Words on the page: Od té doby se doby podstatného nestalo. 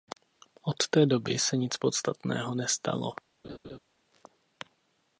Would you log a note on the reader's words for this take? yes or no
yes